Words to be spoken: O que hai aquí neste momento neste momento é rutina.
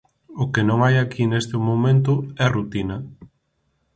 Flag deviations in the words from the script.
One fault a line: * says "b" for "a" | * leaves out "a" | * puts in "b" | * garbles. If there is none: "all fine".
* puts in "non"
* leaves out "neste momento"